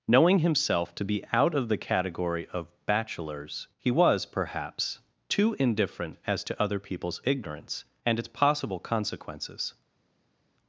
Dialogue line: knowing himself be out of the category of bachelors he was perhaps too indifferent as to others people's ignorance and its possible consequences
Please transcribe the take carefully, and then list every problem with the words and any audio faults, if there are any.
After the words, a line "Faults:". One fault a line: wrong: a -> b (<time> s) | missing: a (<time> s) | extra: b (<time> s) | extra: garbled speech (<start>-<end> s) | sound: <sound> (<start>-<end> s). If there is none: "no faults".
knowing himself to be out of the category of bachelors he was perhaps too indifferent as to other people's ignorance and its possible consequences
Faults:
extra: to (0.9 s)
wrong: others -> other (6.6 s)